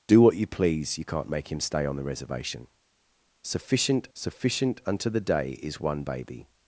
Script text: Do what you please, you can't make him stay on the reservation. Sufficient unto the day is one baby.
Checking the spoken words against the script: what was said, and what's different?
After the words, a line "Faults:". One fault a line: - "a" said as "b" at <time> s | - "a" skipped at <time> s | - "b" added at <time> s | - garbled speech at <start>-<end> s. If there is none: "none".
Do what you please, you can't make him stay on the reservation. Sufficient sufficient unto the day is one baby.
Faults:
- "sufficient" added at 4.1 s